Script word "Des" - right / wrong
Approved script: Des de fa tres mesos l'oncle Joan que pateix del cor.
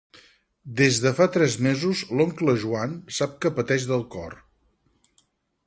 right